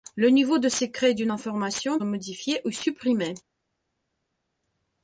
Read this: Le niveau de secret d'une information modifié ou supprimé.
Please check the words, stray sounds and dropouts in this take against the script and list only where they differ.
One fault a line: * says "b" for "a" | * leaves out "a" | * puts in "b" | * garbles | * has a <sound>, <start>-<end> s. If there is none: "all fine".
all fine